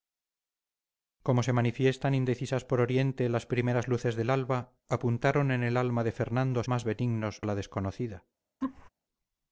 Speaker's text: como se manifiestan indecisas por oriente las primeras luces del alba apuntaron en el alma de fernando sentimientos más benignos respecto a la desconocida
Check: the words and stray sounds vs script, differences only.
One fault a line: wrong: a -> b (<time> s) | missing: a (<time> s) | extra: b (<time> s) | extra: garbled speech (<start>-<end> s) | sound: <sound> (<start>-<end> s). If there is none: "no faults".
missing: sentimientos (6.6 s)
missing: respecto (7.4 s)
sound: laugh (8.6-8.9 s)